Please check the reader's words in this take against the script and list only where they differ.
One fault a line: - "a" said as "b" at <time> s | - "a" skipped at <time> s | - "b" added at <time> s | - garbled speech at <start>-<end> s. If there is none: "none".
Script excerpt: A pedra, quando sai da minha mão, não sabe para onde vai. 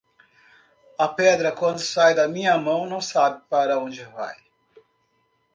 none